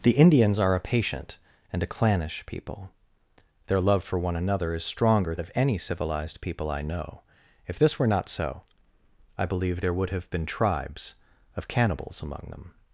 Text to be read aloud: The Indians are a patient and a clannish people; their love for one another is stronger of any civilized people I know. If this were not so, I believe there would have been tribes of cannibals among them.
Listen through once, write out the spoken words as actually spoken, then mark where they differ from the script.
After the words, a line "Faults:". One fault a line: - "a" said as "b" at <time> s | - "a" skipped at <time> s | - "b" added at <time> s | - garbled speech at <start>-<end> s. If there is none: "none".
The Indians are a patient and a clannish people; their love for one another is stronger of any civilized people I know. If this were not so, I believe there would have been tribes of cannibals among them.
Faults:
none